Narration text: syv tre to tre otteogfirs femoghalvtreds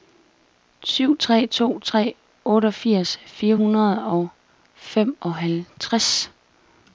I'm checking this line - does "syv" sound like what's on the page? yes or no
yes